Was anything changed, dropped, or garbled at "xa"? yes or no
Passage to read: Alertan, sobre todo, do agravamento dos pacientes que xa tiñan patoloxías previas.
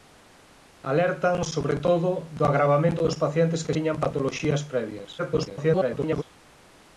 yes